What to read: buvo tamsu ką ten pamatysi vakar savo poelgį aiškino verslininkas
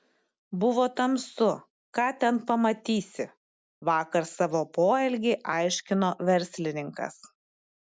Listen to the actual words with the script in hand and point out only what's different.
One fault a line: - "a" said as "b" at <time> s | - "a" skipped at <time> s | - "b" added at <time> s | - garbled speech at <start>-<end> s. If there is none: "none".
none